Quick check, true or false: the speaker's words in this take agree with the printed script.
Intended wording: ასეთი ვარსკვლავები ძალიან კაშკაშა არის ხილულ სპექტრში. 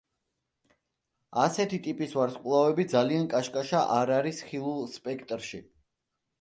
false